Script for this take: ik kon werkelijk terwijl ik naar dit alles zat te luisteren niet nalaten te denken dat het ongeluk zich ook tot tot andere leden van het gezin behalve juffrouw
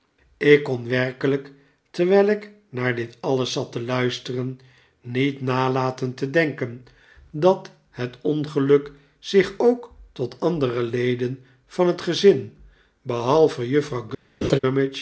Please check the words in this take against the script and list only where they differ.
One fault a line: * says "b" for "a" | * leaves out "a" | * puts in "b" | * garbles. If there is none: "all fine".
* leaves out "tot"